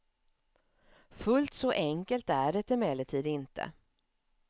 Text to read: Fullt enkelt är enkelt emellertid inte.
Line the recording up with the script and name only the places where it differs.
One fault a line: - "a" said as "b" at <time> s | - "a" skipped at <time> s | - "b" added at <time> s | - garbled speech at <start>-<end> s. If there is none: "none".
- "så" added at 1.5 s
- "enkelt" said as "det" at 2.5 s